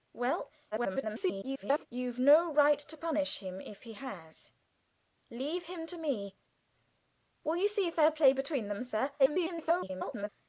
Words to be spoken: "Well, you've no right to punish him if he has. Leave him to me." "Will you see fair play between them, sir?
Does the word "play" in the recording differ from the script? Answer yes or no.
no